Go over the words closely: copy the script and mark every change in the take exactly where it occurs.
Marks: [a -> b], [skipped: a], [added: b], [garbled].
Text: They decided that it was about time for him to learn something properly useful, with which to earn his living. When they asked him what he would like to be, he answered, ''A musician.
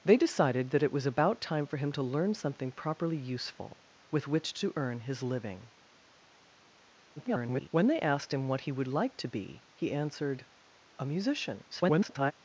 They decided that it was about time for him to learn something properly useful, with which to earn his living. [garbled] When they asked him what he would like to be, he answered, ''A musician. [garbled]